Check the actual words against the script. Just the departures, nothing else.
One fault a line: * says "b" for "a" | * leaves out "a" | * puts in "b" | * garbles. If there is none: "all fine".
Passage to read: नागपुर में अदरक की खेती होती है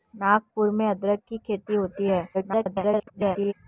* garbles